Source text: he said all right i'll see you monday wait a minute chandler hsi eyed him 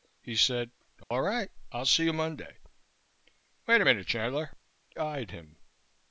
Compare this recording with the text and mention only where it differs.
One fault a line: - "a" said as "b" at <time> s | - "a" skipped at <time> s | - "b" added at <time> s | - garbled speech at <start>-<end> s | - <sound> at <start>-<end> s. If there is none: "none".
- dropout at 1.0-1.1 s
- "hsi" skipped at 4.5 s